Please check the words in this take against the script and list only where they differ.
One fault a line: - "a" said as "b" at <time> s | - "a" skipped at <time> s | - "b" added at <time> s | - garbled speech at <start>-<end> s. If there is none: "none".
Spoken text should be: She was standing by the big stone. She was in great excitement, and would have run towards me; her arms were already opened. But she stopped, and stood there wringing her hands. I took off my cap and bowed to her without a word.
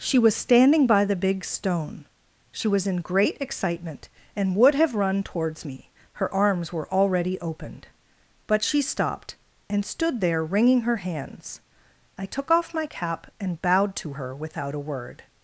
none